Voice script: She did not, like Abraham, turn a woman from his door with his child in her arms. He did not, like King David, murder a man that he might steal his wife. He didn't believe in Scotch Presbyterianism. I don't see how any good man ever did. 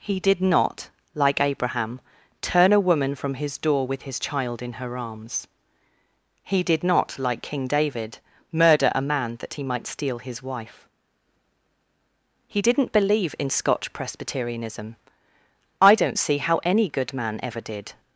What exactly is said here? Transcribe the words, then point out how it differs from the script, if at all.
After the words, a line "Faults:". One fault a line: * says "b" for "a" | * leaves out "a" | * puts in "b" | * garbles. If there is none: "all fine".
He did not, like Abraham, turn a woman from his door with his child in her arms. He did not, like King David, murder a man that he might steal his wife. He didn't believe in Scotch Presbyterianism. I don't see how any good man ever did.
Faults:
* says "He" for "She"